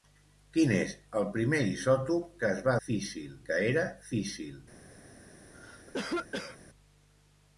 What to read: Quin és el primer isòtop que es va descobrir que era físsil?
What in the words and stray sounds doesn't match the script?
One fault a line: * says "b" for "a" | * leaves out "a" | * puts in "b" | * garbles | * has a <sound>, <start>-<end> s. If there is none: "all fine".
* says "físsil" for "descobrir"
* has a cough, 5.5-6.6 s